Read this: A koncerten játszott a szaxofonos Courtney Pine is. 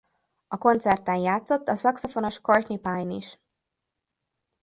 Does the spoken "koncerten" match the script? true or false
true